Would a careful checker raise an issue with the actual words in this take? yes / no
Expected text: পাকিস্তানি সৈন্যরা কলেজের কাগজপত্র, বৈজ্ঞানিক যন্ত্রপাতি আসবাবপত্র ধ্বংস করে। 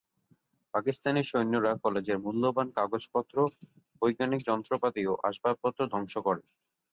yes